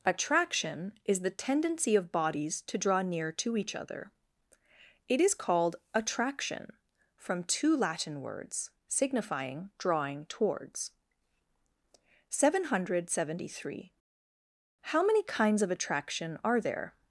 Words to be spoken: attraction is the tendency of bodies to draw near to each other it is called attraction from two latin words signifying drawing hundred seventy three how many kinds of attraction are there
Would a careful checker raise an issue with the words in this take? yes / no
yes